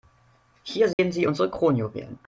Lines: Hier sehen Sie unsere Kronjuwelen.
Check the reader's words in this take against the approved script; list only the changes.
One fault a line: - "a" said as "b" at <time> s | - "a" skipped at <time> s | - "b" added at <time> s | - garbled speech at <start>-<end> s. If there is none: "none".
none